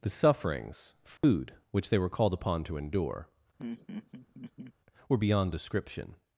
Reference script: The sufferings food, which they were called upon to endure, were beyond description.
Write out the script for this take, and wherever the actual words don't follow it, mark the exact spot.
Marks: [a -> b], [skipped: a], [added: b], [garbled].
The sufferings food, which they were called upon to endure, were beyond description.